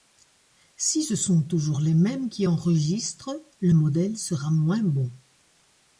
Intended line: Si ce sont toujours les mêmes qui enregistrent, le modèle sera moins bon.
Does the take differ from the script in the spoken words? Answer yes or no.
no